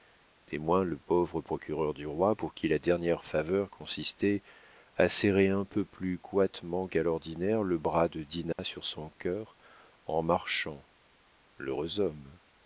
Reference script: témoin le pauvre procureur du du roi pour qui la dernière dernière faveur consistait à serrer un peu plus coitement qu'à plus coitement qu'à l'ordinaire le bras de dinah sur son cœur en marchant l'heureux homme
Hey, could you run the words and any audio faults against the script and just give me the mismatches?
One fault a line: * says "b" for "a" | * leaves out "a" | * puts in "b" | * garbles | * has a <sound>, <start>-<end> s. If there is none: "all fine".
* leaves out "du"
* leaves out "dernière"
* leaves out "plus coitement qu'à"
* has a dropout, 8.5-8.6 s